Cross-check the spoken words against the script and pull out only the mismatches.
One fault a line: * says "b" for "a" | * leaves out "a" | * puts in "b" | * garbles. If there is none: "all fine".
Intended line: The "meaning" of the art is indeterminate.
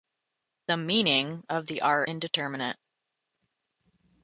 * leaves out "is"